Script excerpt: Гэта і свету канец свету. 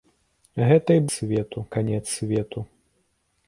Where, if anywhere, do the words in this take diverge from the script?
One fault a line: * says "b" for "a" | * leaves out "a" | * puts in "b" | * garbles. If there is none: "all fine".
all fine